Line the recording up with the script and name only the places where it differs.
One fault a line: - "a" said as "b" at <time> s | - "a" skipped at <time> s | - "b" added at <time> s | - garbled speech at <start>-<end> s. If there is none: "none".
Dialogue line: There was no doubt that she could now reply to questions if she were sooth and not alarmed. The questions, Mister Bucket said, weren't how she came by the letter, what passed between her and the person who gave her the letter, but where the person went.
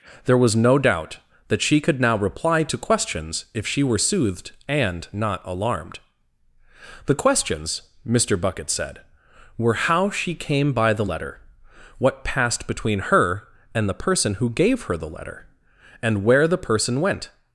- "sooth" said as "soothed" at 4.0 s
- "weren't" said as "were" at 9.6 s
- "but" said as "and" at 16.0 s